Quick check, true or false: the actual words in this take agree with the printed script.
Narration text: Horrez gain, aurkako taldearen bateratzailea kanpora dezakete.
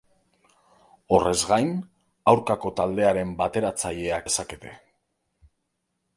false